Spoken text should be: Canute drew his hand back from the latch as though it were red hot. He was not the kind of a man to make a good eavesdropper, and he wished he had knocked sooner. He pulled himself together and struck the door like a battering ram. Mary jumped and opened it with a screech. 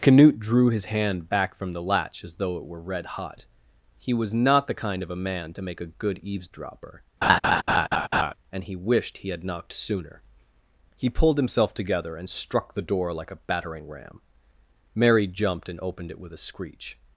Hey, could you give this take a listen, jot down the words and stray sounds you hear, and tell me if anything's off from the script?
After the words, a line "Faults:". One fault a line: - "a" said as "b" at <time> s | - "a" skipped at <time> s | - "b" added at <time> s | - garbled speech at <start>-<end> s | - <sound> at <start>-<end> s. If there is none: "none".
Canute drew his hand back from the latch as though it were red hot. He was not the kind of a man to make a good eavesdropper, and he wished he had knocked sooner. He pulled himself together and struck the door like a battering ram. Mary jumped and opened it with a screech.
Faults:
- laugh at 7.2-8.3 s